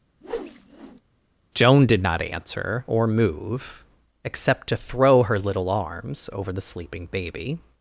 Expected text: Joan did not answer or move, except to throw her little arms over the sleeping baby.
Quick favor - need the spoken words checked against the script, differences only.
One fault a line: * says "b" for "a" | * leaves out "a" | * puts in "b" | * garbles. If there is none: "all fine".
all fine